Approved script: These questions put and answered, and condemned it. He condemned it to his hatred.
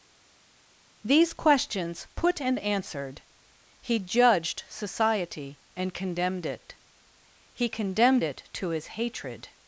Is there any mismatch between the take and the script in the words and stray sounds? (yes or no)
yes